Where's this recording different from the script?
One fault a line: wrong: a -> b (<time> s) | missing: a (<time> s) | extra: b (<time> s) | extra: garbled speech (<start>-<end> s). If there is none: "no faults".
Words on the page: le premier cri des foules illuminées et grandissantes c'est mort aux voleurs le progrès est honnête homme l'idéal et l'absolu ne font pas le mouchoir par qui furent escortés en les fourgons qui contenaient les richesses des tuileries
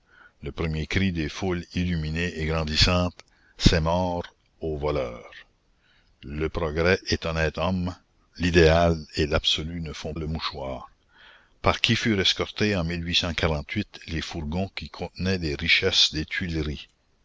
missing: pas (10.2 s)